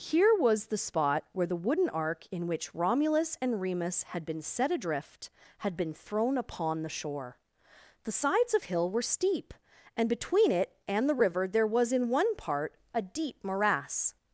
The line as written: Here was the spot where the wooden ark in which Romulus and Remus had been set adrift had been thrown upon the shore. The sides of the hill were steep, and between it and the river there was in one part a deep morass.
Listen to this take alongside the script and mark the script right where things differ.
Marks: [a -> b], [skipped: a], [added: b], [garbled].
Here was the spot where the wooden ark in which Romulus and Remus had been set adrift had been thrown upon the shore. The sides of [skipped: the] hill were steep, and between it and the river there was in one part a deep morass.